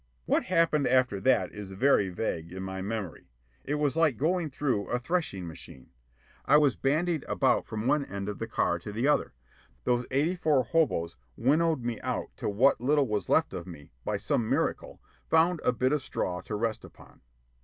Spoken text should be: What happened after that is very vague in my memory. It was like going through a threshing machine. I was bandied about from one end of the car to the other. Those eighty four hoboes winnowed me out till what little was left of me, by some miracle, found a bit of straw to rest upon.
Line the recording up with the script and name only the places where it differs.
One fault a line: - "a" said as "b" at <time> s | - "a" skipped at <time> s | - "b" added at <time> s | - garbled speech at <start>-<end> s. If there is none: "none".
none